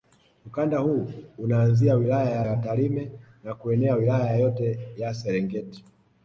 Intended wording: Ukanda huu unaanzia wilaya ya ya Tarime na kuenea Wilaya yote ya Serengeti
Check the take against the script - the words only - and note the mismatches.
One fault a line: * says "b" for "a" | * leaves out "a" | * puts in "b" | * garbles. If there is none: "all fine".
all fine